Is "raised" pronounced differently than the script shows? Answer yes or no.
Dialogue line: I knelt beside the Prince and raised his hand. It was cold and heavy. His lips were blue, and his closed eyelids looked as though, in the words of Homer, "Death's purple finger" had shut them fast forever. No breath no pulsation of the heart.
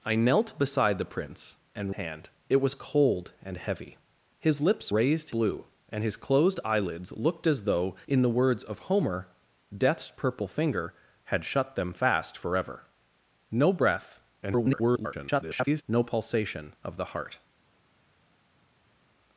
yes